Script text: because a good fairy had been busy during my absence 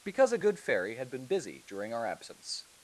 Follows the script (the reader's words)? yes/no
no